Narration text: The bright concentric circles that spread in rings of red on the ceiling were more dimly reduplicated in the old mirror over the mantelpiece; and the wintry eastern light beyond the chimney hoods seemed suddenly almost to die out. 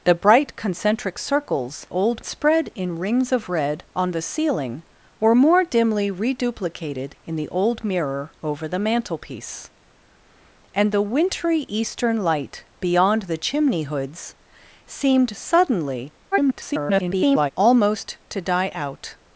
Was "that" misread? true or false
true